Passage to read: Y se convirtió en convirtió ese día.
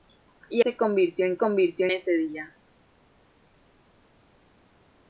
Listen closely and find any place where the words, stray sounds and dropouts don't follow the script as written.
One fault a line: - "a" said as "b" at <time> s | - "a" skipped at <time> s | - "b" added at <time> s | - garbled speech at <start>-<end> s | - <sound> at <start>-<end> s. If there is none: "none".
none